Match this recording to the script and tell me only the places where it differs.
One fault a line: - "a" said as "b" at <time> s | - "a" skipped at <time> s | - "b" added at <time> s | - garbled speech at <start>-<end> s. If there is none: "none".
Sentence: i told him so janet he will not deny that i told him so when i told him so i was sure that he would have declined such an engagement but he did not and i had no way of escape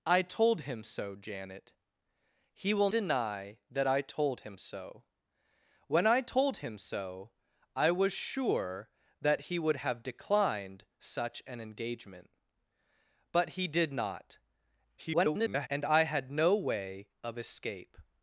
- "not" skipped at 2.9 s
- garbled speech at 15.0-15.7 s